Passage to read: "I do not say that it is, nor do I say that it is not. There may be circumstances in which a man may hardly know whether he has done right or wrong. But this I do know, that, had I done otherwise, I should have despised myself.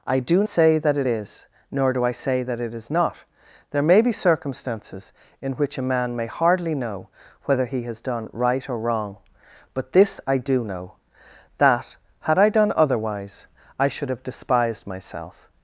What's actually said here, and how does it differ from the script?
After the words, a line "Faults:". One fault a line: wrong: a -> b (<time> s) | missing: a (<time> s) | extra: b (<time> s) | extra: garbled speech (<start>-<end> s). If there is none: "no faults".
"I do say that it is, nor do I say that it is not. There may be circumstances in which a man may hardly know whether he has done right or wrong. But this I do know, that, had I done otherwise, I should have despised myself.
Faults:
missing: not (0.4 s)